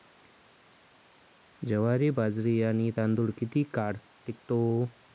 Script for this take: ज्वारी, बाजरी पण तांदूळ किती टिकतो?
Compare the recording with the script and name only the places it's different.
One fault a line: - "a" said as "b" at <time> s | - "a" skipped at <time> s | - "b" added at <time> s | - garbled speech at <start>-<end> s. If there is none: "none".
- "पण" said as "आणि" at 2.6 s
- "काळ" added at 3.7 s